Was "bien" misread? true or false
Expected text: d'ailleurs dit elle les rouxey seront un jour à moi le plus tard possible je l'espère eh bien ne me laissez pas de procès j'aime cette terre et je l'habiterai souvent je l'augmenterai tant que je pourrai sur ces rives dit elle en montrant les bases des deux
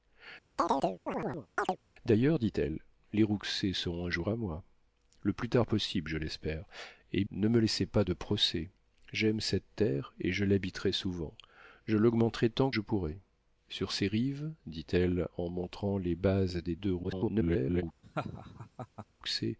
true